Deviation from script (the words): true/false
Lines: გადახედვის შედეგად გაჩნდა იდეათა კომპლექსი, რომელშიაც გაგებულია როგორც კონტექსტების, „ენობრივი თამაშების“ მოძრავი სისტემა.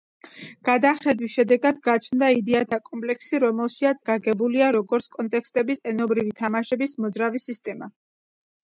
false